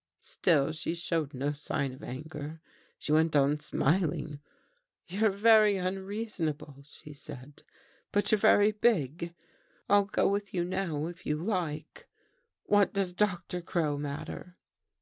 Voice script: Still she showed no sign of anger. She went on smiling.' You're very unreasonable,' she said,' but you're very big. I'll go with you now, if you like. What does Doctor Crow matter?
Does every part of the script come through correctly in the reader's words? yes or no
yes